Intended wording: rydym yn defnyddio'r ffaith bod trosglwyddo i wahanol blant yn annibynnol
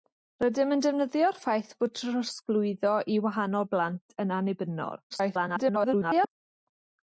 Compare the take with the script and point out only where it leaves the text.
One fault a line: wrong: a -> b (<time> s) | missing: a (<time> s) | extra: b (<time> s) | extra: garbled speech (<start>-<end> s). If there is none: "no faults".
extra: garbled speech (5.1-6.3 s)